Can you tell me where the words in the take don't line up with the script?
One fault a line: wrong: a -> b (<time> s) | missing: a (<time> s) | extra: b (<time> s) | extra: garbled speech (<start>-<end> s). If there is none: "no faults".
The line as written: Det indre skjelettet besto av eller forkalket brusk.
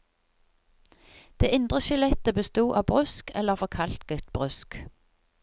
extra: brusk (2.9 s)